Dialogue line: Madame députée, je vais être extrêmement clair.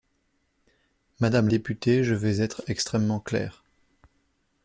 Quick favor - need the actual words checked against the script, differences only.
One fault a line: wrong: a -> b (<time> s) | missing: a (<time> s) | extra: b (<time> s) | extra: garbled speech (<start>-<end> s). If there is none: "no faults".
no faults